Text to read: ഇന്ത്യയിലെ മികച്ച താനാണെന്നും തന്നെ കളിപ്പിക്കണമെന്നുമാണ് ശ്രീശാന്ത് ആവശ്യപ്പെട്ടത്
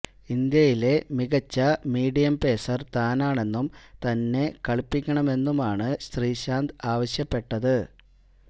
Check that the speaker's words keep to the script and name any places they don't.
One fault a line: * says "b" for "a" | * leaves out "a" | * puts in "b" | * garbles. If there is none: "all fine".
* puts in "മീഡിയം പേസര്"